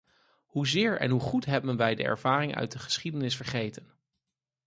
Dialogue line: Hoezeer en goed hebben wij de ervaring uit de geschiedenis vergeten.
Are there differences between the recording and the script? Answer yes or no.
yes